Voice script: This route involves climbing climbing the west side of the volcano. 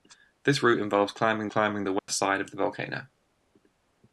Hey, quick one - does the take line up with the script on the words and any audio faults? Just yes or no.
no